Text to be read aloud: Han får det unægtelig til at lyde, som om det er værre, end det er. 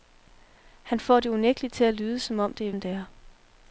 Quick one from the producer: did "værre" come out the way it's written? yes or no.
no